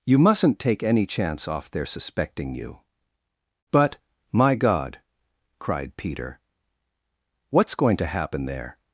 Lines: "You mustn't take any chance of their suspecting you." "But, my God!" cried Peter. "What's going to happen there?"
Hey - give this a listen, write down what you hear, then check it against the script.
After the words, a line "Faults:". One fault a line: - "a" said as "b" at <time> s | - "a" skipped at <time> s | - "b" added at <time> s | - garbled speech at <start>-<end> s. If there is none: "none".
"You mustn't take any chance off their suspecting you." "But, my God!" cried Peter. "What's going to happen there?"
Faults:
- "of" said as "off" at 1.5 s